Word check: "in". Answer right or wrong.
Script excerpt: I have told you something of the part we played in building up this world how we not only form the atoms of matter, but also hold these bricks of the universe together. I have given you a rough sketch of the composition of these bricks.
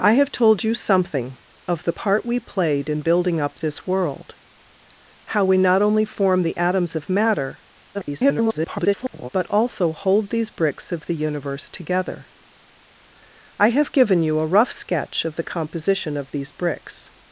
right